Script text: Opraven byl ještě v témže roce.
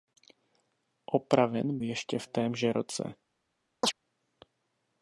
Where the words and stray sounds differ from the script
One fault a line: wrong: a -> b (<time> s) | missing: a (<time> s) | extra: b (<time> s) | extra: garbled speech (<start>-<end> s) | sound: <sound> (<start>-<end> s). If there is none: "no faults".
missing: byl (1.8 s)
sound: chirp (3.8-3.9 s)